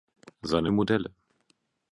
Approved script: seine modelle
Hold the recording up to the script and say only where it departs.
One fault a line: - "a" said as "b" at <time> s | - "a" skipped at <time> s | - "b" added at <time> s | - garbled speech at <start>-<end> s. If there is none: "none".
none